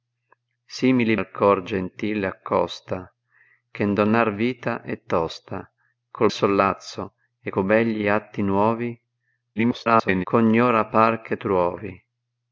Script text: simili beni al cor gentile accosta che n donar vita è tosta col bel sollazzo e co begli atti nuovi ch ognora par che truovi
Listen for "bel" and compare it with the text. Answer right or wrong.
wrong